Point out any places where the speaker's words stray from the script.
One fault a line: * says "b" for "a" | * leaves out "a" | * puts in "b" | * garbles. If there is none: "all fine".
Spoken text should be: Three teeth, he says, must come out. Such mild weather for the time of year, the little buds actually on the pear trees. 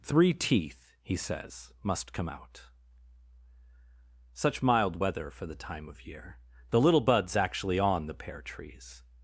all fine